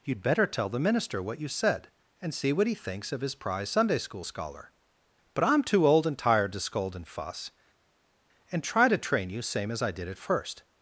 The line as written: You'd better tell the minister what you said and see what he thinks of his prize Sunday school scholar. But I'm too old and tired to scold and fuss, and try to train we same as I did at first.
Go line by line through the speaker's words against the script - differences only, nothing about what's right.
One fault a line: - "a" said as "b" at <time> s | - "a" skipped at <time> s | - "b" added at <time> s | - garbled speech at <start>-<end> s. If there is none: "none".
- "we" said as "you" at 9.3 s